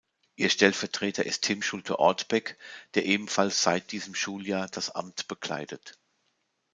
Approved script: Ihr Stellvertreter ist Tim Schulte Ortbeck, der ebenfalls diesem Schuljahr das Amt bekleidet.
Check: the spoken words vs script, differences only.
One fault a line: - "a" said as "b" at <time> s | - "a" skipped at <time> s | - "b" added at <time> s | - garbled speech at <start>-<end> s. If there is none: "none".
- "seit" added at 3.6 s